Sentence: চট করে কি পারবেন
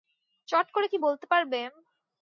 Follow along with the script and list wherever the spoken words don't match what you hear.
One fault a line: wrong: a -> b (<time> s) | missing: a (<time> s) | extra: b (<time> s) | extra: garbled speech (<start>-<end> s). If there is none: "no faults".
extra: বলতে (1.0 s)